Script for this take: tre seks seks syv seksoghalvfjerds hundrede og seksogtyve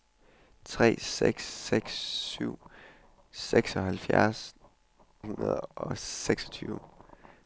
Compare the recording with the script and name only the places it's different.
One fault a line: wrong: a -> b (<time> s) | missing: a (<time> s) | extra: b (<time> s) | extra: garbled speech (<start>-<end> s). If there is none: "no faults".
no faults